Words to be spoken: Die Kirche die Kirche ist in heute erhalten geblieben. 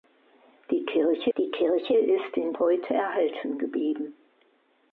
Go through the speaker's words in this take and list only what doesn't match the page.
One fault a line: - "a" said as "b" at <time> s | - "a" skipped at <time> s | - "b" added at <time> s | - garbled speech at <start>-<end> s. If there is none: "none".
none